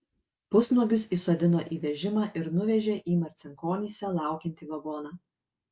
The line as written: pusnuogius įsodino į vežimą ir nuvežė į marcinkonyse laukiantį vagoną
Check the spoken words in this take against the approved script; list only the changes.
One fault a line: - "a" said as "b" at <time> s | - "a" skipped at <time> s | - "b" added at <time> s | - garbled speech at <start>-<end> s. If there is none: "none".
none